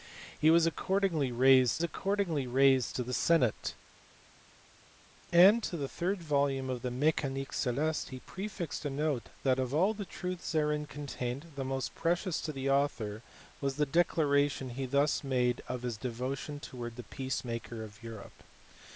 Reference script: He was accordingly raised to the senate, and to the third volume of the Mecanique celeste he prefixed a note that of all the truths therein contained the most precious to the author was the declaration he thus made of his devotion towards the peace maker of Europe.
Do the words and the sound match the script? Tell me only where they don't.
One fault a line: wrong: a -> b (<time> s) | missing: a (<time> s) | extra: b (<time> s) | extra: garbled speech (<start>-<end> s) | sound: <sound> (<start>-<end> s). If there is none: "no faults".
extra: accordingly raised (1.8 s)